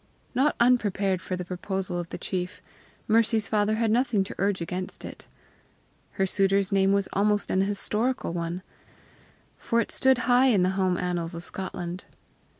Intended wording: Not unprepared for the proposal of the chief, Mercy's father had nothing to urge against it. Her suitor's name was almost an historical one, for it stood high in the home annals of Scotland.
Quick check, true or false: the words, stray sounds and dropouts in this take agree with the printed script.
true